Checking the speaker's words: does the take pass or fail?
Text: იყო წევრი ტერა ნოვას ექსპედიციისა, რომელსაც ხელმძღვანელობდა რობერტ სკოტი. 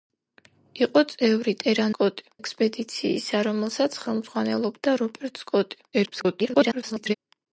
fail